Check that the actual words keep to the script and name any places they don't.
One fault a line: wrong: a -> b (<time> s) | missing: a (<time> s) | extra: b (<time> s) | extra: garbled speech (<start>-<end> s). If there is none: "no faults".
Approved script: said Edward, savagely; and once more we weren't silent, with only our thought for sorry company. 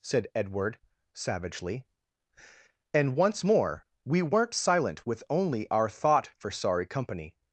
no faults